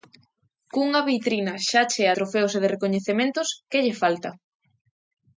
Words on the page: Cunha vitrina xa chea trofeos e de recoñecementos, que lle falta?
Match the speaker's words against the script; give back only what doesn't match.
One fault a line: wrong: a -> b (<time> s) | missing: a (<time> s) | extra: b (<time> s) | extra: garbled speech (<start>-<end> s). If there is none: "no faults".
no faults